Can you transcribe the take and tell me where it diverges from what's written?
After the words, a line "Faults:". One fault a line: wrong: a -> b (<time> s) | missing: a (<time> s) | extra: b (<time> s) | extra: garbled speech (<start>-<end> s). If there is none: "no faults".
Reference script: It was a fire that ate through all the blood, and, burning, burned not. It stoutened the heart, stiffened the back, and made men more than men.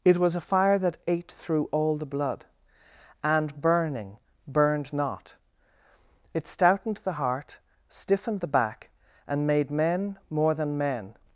It was a fire that ate through all the blood, and, burning, burned not. It stoutened the heart, stiffened the back, and made men more than men.
Faults:
no faults